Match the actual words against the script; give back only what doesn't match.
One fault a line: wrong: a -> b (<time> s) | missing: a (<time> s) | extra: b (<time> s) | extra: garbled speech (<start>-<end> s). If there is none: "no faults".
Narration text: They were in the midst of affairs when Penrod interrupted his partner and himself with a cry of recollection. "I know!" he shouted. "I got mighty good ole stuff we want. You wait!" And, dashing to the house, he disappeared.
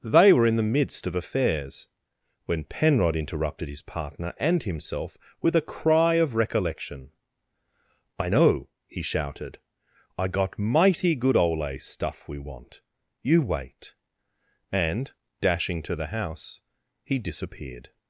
no faults